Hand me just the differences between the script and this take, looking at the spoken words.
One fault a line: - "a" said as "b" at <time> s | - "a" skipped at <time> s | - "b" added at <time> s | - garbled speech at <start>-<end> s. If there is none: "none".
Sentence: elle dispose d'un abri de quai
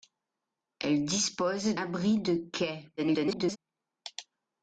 - "d'un" skipped at 1.8 s
- garbled speech at 3.0-3.6 s